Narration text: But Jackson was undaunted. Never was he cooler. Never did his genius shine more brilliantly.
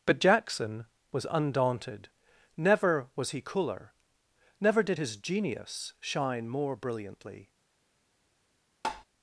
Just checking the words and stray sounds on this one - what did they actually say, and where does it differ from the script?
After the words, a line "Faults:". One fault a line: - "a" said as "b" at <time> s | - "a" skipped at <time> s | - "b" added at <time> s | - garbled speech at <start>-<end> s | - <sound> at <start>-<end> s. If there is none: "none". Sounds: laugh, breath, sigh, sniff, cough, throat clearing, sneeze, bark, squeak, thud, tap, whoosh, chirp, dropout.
But Jackson was undaunted. Never was he cooler. Never did his genius shine more brilliantly.
Faults:
- tap at 8.8-9.0 s